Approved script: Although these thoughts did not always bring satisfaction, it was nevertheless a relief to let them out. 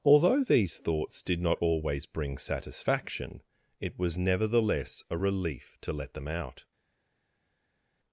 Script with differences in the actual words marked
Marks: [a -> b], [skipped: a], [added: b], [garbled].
Although these thoughts did not always bring satisfaction, it was nevertheless a relief to let them out.